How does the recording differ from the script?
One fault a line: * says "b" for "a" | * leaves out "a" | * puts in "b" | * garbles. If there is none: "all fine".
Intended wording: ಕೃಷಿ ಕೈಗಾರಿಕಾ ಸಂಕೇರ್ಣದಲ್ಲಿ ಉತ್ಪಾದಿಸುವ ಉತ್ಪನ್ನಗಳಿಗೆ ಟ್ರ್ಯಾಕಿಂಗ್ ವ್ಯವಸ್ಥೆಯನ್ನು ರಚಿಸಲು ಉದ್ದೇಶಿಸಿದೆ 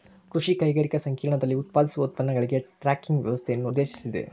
* leaves out "ರಚಿಸಲು"